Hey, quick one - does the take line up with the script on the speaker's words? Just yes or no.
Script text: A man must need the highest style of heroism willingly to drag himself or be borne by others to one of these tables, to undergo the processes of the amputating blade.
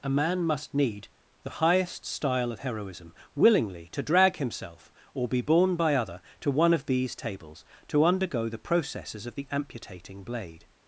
no